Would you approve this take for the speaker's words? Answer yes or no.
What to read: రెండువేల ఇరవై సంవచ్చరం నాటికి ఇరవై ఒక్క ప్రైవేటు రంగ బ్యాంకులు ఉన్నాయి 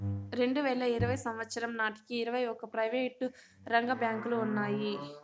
yes